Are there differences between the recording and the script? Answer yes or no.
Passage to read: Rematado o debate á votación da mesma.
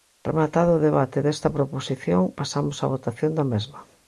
yes